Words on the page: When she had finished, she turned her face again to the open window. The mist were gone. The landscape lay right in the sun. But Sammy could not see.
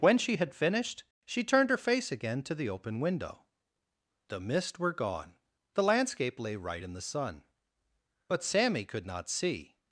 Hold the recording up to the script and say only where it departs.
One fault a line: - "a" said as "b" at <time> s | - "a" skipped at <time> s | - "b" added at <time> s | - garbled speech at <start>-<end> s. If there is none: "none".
none